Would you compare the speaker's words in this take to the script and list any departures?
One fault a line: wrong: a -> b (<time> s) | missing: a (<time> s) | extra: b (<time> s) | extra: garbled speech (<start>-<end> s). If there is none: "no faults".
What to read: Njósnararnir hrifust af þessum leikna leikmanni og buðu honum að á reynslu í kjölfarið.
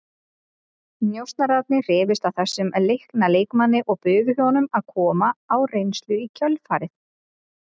extra: koma (5.0 s)